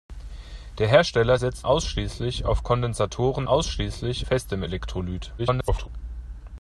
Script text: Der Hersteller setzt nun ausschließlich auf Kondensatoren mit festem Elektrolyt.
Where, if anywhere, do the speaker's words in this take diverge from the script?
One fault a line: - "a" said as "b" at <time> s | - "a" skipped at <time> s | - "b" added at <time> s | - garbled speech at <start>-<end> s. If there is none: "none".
- "nun" skipped at 1.7 s
- "mit" said as "ausschließlich" at 3.4 s
- garbled speech at 5.4-5.9 s